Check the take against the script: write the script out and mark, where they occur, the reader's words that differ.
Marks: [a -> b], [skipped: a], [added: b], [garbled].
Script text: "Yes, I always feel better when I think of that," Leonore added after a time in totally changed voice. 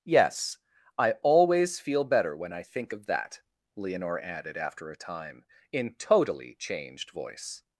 "Yes, I always feel better when I think of that," Leonore added after a time in totally changed voice.